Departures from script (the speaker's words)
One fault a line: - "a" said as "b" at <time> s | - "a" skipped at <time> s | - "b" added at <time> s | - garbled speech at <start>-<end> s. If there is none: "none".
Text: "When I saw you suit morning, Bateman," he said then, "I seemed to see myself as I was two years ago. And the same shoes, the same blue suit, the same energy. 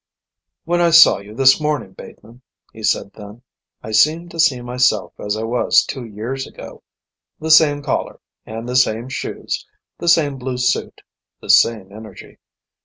- "suit" said as "this" at 1.3 s
- "The same collar" added at 7.4 s